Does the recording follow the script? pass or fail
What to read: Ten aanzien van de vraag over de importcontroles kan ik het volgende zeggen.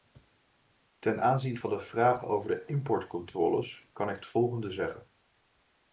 pass